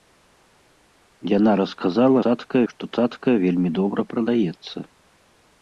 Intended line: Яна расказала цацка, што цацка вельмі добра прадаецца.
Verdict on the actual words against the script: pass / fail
pass